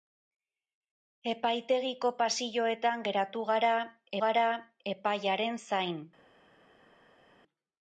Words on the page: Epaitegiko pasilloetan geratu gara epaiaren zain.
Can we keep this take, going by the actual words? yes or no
no